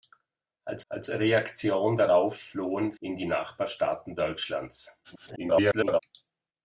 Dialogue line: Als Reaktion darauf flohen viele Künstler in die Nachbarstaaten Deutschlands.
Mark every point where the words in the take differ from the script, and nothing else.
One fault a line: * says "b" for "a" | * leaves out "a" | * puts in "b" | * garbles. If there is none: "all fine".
* puts in "als"
* leaves out "viele Künstler"
* garbles